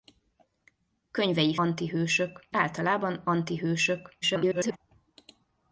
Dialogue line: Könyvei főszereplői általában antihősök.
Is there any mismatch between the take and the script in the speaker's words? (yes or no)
yes